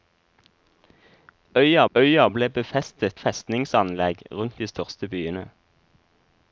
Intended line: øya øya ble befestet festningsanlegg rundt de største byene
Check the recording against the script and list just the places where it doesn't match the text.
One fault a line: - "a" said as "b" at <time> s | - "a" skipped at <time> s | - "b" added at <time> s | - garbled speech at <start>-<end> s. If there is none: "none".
none